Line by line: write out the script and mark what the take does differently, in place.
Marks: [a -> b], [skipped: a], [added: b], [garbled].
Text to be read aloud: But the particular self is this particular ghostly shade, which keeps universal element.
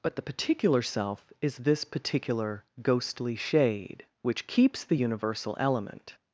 But the particular self is this particular ghostly shade, which keeps [added: the] universal element.